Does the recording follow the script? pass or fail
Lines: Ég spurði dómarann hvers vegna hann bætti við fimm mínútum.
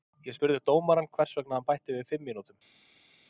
pass